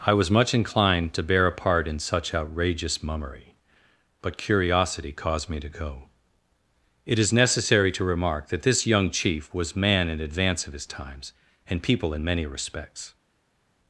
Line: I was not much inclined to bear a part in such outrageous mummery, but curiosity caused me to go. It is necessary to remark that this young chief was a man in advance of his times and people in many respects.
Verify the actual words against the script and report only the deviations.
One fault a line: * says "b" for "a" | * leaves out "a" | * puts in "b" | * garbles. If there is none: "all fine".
* leaves out "not"
* leaves out "a"